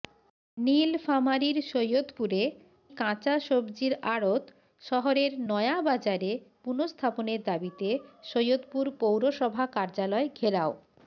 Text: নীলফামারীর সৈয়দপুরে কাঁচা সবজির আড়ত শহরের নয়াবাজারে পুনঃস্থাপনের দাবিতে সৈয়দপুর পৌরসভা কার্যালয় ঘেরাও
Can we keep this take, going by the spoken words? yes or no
yes